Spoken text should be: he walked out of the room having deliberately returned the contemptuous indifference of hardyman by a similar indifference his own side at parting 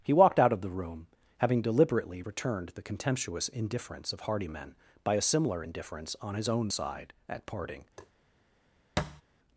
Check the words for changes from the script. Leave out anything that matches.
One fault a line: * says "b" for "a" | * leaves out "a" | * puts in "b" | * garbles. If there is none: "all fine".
* puts in "on"